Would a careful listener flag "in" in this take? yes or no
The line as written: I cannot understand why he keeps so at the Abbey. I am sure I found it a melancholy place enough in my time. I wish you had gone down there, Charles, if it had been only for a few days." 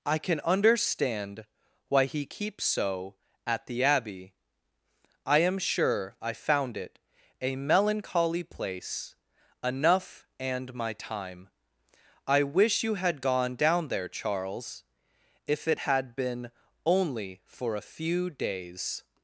yes